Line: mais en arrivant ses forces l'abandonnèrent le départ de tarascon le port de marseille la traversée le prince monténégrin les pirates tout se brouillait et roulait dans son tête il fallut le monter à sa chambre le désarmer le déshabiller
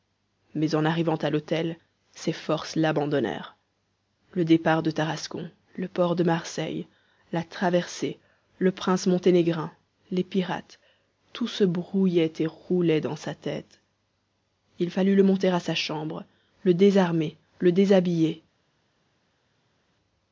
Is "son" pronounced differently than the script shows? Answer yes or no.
yes